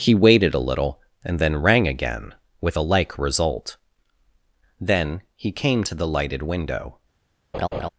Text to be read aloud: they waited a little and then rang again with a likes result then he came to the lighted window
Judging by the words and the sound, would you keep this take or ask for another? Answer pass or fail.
fail